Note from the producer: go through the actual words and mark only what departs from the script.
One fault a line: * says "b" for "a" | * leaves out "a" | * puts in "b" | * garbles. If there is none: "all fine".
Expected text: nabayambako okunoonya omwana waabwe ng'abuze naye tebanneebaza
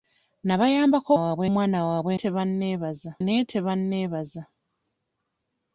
* says "waabwe" for "okunoonya"
* says "tebanneebaza" for "ng'abuze"